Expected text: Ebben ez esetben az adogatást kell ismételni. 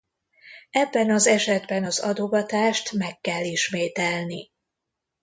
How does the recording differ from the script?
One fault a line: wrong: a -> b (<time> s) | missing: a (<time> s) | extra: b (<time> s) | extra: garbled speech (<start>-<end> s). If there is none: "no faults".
wrong: ez -> az (1.1 s)
extra: meg (2.9 s)